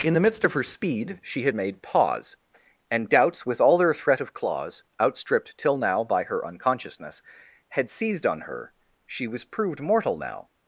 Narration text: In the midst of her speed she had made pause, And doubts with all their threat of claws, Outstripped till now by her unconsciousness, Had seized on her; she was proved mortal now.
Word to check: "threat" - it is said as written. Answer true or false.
true